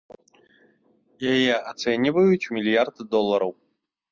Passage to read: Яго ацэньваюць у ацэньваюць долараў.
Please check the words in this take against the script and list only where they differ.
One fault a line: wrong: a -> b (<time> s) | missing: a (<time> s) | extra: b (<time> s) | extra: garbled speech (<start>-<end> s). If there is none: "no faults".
wrong: Яго -> Яе (1.3 s)
wrong: ацэньваюць -> мільярд (2.6 s)